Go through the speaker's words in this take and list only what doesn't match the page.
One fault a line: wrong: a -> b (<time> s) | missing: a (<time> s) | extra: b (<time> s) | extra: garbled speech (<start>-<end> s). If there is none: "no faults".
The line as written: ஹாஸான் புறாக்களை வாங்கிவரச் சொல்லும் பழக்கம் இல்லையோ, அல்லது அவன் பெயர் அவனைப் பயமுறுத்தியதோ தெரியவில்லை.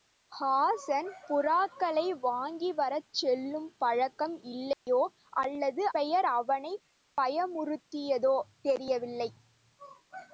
missing: அவன் (5.9 s)